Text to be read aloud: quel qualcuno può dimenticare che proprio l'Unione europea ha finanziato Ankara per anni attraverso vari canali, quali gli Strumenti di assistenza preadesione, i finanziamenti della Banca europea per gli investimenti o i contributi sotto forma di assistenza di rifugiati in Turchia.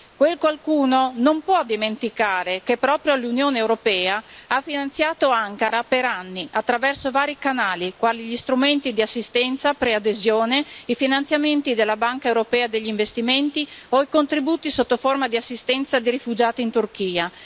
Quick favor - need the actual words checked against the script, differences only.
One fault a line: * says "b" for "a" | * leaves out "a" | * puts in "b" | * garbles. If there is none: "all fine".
* puts in "non"